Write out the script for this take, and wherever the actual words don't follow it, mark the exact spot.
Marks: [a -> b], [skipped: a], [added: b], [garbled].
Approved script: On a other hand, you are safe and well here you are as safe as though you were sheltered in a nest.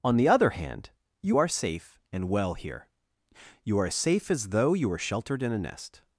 On [a -> the] other hand, you are safe and well here you are as safe as though you were sheltered in a nest.